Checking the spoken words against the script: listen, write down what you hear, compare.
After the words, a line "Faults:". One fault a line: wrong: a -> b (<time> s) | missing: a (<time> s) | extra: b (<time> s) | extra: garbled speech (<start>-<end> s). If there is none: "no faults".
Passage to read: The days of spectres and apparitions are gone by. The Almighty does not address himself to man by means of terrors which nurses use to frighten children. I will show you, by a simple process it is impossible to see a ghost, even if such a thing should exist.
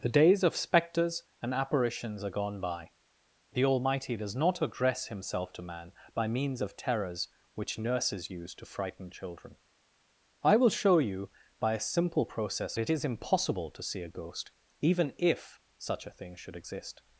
The days of spectres and apparitions are gone by. The Almighty does not address himself to man by means of terrors which nurses use to frighten children. I will show you, by a simple process it is impossible to see a ghost, even if such a thing should exist.
Faults:
no faults